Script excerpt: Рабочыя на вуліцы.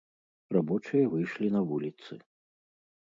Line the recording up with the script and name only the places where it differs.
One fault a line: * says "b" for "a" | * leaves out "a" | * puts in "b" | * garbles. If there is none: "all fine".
* puts in "выйшлі"